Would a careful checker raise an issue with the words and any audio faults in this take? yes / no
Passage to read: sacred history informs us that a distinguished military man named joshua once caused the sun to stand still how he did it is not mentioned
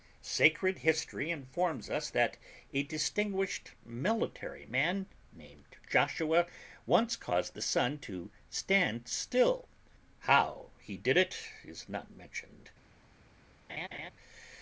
yes